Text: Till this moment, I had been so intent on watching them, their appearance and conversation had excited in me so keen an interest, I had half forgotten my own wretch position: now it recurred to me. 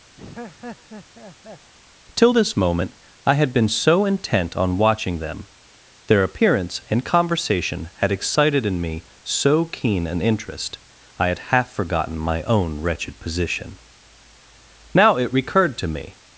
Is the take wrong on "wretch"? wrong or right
wrong